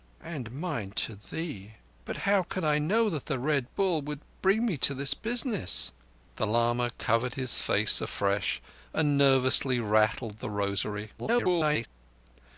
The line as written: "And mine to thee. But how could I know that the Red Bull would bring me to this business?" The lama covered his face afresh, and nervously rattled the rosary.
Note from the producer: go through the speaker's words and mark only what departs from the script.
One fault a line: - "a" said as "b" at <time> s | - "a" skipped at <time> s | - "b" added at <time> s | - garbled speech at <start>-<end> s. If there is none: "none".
- garbled speech at 11.2-11.9 s